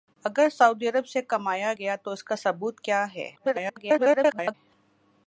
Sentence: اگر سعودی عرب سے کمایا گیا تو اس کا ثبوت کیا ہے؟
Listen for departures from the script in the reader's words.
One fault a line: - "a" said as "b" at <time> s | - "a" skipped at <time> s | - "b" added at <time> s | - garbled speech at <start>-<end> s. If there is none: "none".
- garbled speech at 3.4-4.5 s